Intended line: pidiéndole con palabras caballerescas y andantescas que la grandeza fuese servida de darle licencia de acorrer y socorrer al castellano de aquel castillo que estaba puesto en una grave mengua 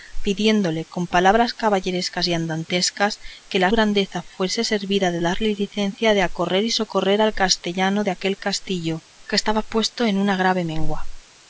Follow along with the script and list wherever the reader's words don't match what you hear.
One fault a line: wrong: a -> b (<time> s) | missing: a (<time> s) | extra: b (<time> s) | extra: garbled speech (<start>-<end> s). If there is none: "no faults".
no faults